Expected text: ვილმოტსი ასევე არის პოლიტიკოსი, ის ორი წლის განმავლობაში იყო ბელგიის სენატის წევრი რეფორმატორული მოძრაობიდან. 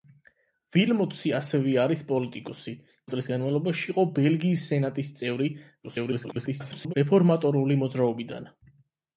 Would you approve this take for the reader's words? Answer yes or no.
no